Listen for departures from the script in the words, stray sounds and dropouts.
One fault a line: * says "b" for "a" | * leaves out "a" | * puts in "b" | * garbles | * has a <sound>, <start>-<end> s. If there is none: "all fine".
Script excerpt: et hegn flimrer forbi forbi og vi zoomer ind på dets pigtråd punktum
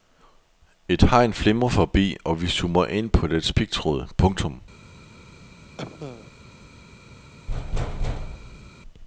* leaves out "forbi"
* has a cough, 5.8-6.3 s
* has a thud, 7.5-8.7 s